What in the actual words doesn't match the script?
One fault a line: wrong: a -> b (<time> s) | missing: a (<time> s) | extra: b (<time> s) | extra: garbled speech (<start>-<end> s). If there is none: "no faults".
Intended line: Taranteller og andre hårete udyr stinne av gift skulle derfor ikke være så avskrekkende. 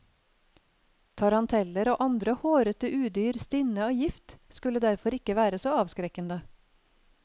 no faults